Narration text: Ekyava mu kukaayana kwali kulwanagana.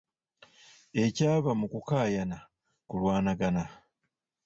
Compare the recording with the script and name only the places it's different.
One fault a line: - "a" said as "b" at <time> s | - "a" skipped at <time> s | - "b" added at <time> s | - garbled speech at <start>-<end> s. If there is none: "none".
- "kwali" skipped at 2.4 s